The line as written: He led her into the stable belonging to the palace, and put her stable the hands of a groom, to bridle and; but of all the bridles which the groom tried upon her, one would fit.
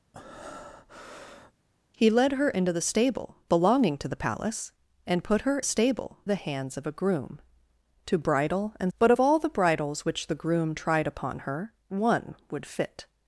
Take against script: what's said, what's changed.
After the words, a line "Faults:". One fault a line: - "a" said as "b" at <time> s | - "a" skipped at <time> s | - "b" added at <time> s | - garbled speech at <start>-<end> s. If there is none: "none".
He led her into the stable belonging to the palace, and put her stable the hands of a groom, to bridle and; but of all the bridles which the groom tried upon her, one would fit.
Faults:
none